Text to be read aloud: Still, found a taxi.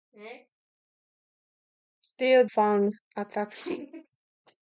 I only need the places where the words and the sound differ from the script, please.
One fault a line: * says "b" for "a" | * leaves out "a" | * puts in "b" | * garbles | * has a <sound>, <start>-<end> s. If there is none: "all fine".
all fine